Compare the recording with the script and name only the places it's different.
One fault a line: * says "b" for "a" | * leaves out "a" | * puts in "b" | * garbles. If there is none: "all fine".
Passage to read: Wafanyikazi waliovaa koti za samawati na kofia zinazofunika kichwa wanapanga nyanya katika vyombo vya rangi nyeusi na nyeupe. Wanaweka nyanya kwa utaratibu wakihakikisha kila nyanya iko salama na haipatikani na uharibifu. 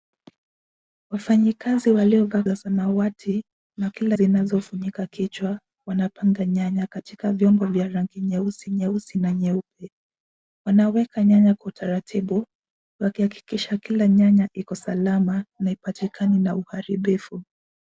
* leaves out "koti"
* says "kila" for "kofia"
* puts in "nyeusi"